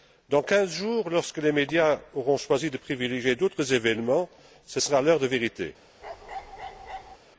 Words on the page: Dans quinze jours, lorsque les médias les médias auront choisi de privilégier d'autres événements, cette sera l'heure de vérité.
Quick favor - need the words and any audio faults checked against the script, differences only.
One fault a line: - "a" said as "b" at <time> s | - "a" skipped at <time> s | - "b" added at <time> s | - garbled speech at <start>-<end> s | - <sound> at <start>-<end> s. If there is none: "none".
- "les médias" skipped at 2.0 s
- "cette" said as "ce" at 4.7 s
- bark at 6.0-7.2 s